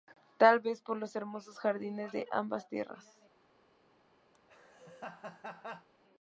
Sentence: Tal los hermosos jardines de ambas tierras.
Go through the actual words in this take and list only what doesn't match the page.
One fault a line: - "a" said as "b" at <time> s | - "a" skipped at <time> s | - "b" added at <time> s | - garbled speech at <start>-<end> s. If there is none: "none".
- "vez por" added at 0.6 s